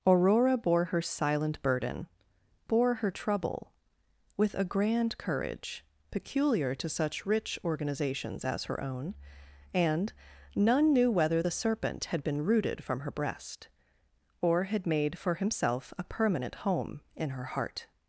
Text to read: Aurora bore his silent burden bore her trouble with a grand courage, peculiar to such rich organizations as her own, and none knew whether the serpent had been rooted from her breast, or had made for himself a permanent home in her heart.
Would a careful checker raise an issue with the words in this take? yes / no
yes